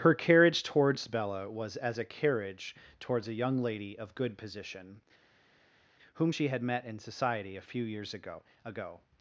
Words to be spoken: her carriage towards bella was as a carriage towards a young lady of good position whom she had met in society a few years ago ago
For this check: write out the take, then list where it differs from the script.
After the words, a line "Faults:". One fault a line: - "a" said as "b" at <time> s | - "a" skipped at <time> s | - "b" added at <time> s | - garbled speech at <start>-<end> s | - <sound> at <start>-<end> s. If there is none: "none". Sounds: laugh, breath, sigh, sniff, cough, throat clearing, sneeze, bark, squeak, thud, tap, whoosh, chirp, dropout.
her carriage towards bella was as a carriage towards a young lady of good position whom she had met in society a few years ago ago
Faults:
none